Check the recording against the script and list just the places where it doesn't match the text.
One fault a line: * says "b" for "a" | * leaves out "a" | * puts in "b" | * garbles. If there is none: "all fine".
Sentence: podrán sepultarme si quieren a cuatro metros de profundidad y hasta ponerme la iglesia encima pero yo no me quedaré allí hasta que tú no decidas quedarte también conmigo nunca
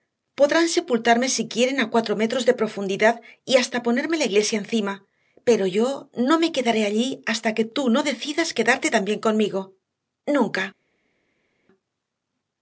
all fine